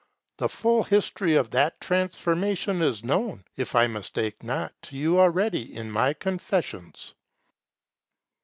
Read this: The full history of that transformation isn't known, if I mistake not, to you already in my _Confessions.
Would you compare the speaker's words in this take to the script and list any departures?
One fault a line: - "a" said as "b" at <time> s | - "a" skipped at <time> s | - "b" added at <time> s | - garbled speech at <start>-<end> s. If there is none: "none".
- "isn't" said as "is" at 2.8 s